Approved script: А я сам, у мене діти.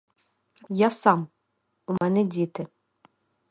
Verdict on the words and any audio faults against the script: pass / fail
fail